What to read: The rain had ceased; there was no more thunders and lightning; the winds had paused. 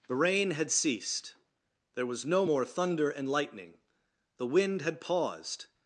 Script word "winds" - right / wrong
wrong